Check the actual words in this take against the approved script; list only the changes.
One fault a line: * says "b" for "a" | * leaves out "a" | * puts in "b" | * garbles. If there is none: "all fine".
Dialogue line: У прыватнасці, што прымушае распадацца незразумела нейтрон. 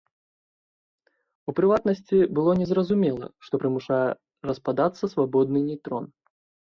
* puts in "было незразумела"
* says "свабодны" for "незразумела"